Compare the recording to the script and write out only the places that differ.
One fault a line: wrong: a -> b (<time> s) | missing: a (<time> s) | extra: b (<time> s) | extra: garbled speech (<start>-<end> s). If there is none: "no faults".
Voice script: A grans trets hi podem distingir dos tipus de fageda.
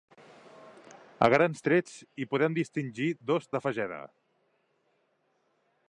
missing: tipus (3.5 s)